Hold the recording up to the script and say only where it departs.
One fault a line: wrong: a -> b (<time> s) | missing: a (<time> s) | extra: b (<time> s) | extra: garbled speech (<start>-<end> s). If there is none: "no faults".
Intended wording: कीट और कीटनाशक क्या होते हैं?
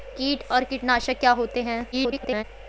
extra: garbled speech (1.9-2.4 s)